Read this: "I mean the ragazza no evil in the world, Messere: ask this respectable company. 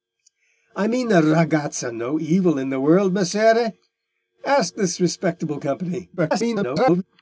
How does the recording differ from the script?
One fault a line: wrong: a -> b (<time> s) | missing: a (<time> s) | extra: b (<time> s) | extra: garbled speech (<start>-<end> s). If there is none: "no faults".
extra: garbled speech (6.2-7.0 s)